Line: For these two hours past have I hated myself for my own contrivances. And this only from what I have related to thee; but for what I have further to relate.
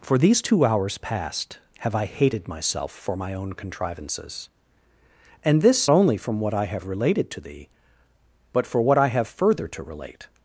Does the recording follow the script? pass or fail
pass